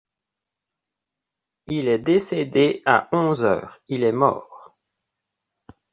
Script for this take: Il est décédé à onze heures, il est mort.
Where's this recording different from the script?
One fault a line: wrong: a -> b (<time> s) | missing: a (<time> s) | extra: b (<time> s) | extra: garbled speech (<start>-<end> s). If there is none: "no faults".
no faults